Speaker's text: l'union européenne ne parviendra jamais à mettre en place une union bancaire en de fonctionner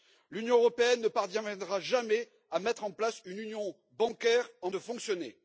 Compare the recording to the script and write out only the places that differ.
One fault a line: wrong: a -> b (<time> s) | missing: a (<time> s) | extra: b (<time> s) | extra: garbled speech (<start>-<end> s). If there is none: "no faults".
no faults